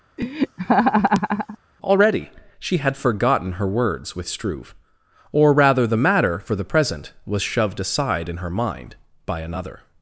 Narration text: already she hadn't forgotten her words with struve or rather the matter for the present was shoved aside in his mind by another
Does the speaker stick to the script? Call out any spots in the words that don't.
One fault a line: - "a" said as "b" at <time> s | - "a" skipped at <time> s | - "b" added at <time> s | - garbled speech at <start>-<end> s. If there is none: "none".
- "hadn't" said as "had" at 2.8 s
- "his" said as "her" at 8.4 s